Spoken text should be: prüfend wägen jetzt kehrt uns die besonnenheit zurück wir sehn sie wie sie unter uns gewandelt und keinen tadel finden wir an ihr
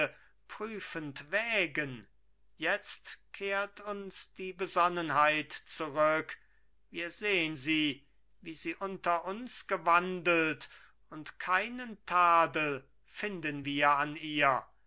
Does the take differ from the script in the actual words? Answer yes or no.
no